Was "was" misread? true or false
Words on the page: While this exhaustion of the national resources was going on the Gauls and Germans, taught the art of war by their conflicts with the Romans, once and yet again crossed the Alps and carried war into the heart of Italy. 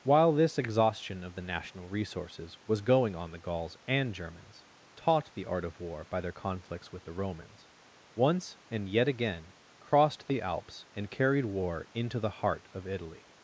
false